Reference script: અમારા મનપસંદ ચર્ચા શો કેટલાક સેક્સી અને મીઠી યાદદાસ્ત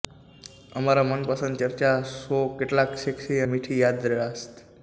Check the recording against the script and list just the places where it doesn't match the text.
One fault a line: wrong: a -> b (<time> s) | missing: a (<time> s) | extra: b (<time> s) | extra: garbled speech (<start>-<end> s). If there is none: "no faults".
missing: અને (3.4 s)